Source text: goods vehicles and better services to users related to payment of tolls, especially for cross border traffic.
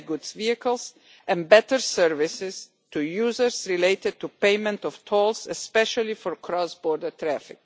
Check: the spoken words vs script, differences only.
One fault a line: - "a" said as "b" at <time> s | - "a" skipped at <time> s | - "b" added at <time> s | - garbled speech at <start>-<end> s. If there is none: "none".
none